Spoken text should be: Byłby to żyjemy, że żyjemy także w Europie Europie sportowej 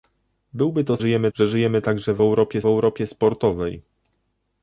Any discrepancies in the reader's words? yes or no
no